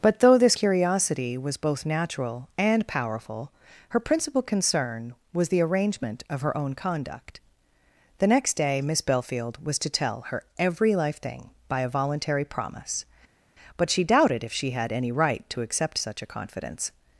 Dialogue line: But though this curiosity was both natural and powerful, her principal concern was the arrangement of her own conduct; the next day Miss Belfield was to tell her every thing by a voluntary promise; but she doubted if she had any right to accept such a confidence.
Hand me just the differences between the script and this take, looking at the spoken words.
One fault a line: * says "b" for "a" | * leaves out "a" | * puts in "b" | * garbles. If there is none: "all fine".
* puts in "life"